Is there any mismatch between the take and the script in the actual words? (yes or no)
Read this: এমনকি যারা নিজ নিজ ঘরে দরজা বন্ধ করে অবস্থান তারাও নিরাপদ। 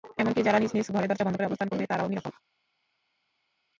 yes